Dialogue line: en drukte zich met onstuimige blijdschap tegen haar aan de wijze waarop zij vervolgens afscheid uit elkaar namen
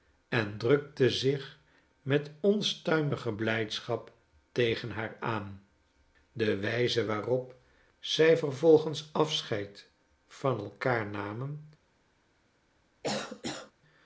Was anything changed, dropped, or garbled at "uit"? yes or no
yes